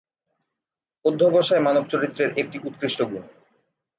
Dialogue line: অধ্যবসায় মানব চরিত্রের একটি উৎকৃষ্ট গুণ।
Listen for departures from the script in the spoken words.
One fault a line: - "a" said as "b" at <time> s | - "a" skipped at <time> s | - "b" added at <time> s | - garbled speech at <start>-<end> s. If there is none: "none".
none